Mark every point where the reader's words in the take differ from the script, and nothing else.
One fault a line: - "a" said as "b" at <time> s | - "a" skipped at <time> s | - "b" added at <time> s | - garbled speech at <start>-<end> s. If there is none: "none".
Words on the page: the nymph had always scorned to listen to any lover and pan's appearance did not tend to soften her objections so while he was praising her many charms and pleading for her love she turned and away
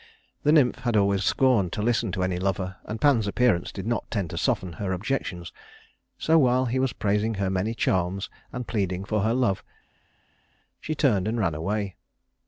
- "ran" added at 11.4 s